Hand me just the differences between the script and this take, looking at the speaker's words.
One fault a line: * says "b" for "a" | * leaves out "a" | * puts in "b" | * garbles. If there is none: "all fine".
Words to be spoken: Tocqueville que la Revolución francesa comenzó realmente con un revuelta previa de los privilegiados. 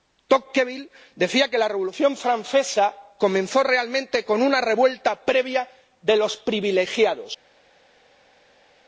* puts in "decía"
* says "una" for "un"